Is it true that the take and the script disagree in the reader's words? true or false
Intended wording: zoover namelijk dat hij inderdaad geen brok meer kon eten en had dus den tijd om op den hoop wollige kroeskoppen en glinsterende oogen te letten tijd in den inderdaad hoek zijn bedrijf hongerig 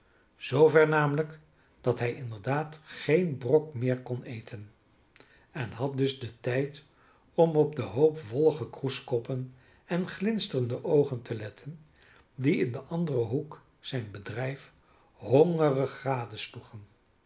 true